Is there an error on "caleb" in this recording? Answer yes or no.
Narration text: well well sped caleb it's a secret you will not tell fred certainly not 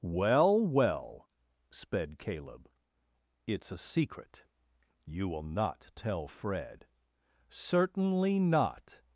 no